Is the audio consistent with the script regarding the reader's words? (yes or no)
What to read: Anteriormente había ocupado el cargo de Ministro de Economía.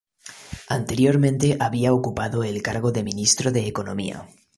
yes